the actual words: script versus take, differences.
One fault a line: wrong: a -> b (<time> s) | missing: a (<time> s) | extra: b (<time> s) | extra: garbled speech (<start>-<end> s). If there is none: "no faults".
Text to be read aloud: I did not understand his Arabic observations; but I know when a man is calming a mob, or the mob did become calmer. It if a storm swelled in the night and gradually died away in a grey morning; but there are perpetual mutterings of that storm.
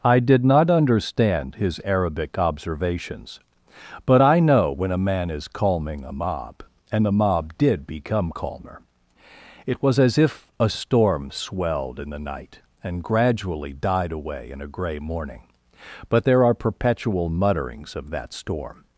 wrong: or -> and (6.9 s)
extra: was as (9.8 s)